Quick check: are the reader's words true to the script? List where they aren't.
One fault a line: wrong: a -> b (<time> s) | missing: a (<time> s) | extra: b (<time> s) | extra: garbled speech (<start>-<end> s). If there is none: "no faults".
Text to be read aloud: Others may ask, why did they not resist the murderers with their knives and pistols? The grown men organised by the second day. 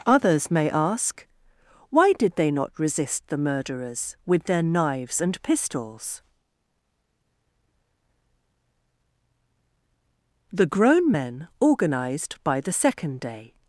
no faults